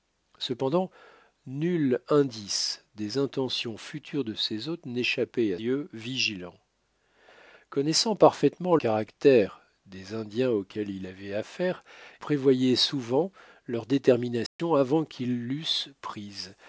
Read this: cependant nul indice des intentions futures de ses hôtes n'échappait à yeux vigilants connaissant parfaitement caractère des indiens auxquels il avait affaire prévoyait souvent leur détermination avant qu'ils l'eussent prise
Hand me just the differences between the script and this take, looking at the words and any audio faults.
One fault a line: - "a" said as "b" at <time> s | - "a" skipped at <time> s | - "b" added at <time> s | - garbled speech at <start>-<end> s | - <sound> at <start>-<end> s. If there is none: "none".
- dropout at 14.5-14.6 s